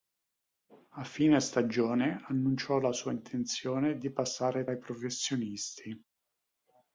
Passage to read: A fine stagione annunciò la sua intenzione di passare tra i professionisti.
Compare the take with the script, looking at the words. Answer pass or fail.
fail